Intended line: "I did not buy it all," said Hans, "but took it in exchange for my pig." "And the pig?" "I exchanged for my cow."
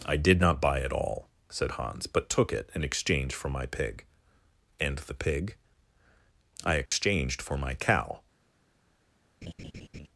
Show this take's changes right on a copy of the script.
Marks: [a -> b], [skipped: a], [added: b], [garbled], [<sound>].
"I did not buy it all," said Hans, "but took it in exchange for my pig." "And the pig?" "I exchanged [dropout] for my cow." [laugh]